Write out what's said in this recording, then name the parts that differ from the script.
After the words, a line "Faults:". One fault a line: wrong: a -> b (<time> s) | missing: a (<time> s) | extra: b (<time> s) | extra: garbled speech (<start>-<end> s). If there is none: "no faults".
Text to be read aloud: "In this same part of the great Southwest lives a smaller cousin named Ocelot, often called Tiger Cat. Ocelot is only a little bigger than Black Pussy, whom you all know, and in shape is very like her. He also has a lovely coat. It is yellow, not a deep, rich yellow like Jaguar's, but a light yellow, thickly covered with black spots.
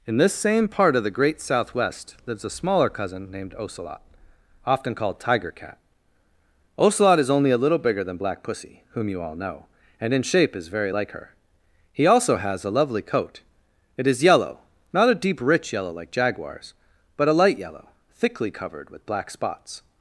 "In this same part of the great Southwest lives a smaller cousin named Ocelot, often called Tiger Cat. Ocelot is only a little bigger than Black Pussy, whom you all know, and in shape is very like her. He also has a lovely coat. It is yellow, not a deep, rich yellow like Jaguar's, but a light yellow, thickly covered with black spots.
Faults:
no faults